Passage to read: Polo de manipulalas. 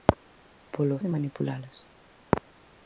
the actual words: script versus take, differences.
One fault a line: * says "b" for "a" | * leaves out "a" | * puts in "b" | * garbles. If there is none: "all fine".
all fine